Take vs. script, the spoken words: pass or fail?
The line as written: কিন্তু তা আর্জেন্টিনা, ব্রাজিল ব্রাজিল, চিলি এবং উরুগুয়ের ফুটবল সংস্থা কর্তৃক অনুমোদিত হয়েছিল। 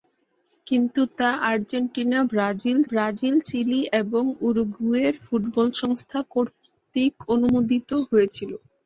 pass